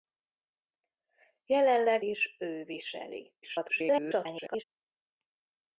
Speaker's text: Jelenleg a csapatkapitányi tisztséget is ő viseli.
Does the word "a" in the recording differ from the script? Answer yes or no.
yes